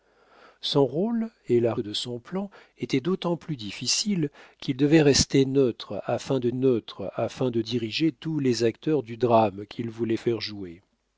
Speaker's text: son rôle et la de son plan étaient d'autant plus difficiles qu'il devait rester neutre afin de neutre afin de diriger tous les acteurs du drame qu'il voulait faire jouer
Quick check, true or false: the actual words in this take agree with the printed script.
true